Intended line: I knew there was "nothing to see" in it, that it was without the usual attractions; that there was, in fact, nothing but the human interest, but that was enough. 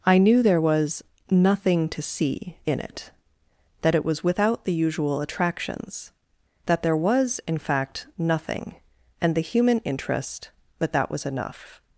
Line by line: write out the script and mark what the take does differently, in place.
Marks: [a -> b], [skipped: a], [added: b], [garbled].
I knew there was "nothing to see" in it, that it was without the usual attractions; that there was, in fact, nothing [but -> and] the human interest, but that was enough.